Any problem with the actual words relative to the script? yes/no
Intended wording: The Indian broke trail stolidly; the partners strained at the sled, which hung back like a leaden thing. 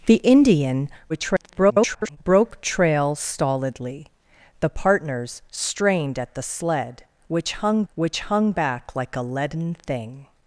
yes